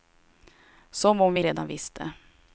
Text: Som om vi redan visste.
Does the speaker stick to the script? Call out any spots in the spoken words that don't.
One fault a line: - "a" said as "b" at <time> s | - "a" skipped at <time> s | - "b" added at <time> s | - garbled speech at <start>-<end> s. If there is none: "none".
none